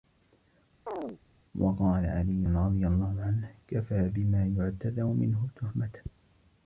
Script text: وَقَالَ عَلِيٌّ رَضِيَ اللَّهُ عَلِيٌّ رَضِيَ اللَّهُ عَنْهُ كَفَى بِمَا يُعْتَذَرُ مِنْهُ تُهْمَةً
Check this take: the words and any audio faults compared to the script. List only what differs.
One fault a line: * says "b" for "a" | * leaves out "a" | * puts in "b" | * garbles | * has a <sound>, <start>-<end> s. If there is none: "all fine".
* has a chirp, 0.9-1.2 s
* leaves out "عَلِيٌّ رَضِيَ اللَّهُ"